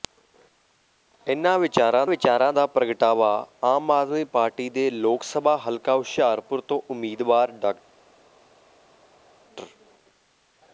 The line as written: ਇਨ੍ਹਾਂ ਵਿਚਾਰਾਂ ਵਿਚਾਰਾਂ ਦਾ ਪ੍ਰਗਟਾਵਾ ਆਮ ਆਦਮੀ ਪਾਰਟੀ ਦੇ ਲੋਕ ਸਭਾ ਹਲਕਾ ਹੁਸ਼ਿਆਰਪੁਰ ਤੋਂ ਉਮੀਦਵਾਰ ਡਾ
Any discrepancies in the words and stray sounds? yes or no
no